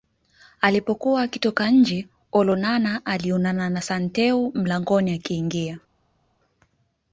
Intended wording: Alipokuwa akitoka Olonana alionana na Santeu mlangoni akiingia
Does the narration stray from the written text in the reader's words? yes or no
yes